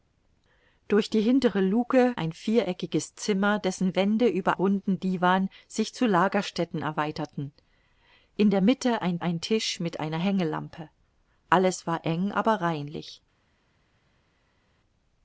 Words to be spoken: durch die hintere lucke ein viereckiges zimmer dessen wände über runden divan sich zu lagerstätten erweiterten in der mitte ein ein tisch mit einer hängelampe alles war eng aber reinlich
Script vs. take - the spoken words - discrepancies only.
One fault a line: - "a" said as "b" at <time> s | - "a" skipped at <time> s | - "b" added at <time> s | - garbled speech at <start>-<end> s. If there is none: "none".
none